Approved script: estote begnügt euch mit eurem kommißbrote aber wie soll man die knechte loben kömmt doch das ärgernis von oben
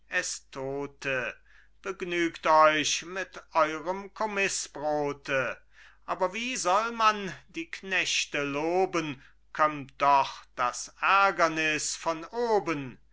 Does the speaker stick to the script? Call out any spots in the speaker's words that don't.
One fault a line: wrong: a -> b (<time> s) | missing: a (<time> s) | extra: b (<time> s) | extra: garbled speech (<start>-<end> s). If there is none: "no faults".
no faults